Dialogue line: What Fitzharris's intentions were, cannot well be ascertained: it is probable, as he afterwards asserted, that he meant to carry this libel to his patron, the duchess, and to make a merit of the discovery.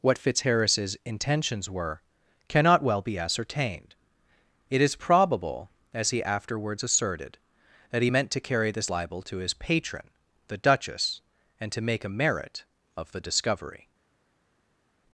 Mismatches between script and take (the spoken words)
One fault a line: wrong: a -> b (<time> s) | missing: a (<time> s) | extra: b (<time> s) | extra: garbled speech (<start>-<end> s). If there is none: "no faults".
no faults